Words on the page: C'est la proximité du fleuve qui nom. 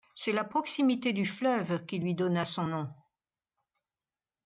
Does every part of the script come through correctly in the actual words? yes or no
no